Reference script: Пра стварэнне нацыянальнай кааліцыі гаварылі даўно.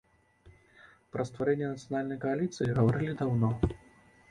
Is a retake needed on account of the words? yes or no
no